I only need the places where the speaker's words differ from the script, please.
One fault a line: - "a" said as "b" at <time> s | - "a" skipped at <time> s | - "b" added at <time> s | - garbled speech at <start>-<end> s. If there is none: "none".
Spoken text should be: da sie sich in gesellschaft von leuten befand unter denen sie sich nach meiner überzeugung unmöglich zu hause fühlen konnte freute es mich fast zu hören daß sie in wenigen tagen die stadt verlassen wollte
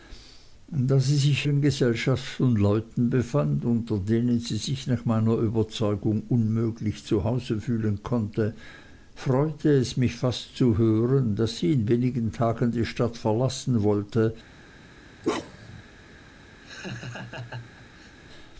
none